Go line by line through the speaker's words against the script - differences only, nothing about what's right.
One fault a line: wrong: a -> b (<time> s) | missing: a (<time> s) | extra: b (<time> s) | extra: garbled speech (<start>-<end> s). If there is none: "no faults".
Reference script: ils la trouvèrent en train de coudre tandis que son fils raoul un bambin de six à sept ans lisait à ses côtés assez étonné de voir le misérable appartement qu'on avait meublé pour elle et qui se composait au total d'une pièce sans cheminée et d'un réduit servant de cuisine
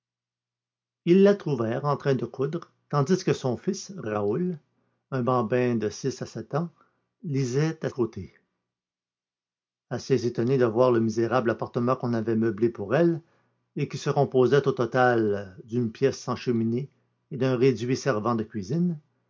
missing: ses (7.9 s)